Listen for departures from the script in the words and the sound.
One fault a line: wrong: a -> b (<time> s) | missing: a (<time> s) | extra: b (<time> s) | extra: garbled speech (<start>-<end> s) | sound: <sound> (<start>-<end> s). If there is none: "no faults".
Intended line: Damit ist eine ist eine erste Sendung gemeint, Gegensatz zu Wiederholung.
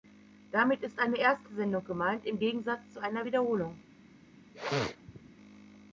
missing: ist eine (1.2 s)
extra: im (2.2 s)
extra: einer (3.0 s)
sound: sneeze (4.5-5.3 s)